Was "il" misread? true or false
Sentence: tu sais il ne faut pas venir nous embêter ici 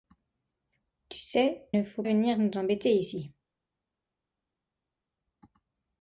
true